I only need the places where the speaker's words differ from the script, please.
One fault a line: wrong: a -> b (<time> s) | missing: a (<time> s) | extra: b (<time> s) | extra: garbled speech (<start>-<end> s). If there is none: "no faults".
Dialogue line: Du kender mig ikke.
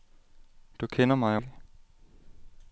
no faults